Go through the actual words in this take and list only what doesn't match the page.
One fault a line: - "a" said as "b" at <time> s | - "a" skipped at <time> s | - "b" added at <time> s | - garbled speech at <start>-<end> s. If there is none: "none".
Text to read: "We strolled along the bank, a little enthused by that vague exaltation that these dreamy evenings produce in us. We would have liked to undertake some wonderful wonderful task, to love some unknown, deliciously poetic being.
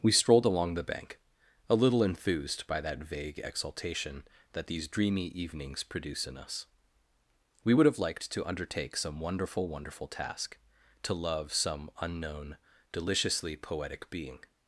none